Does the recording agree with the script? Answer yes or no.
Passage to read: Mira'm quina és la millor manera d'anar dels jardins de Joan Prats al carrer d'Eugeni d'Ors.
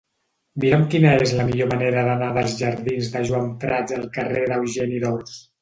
yes